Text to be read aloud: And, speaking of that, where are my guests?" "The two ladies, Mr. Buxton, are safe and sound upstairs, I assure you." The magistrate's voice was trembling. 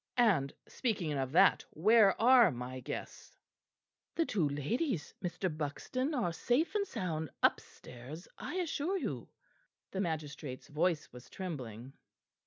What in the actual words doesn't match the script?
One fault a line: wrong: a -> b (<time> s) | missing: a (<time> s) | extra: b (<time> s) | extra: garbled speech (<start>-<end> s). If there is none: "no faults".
no faults